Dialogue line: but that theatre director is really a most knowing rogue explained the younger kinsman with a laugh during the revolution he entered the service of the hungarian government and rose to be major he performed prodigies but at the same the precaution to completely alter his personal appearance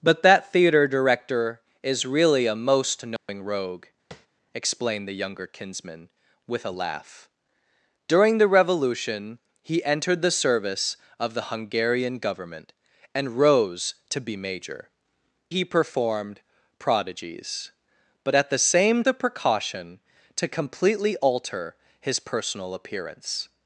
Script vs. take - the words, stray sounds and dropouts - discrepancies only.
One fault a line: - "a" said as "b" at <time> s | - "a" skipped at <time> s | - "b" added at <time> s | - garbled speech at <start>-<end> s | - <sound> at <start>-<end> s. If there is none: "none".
- dropout at 3.2-3.3 s
- tap at 4.1-4.3 s